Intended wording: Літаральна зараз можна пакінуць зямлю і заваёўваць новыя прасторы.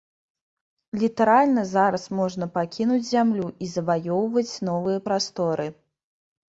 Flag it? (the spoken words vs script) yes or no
no